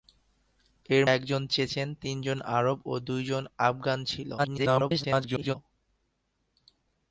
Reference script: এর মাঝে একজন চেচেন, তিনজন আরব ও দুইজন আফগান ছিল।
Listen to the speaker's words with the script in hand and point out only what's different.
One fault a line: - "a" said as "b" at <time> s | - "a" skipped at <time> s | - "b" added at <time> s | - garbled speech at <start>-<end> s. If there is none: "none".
- "মাঝে" skipped at 1.0 s
- garbled speech at 4.4-5.6 s